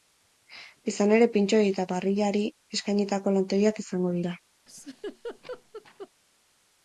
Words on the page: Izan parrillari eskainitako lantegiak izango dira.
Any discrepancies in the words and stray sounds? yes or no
yes